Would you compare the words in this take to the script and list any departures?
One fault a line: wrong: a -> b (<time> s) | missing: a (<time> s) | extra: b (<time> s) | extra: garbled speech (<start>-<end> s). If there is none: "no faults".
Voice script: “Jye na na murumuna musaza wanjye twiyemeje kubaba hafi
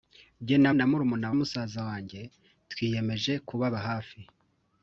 no faults